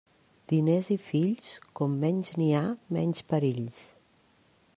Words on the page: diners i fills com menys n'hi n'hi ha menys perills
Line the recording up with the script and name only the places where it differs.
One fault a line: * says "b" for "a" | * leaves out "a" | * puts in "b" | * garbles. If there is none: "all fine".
* leaves out "n'hi"